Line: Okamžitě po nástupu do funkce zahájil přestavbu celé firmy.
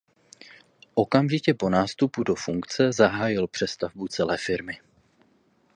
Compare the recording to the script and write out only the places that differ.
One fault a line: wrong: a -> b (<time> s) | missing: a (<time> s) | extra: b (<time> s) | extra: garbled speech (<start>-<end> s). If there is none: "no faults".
no faults